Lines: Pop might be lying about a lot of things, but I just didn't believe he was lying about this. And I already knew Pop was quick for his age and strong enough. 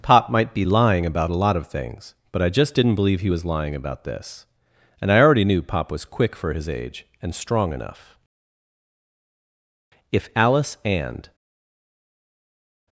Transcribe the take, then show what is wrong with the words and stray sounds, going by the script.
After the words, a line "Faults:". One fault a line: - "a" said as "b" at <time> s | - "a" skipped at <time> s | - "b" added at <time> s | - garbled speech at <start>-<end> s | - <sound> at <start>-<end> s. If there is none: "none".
Pop might be lying about a lot of things, but I just didn't believe he was lying about this. And I already knew Pop was quick for his age and strong enough. If Alice and
Faults:
- "If Alice and" added at 10.1 s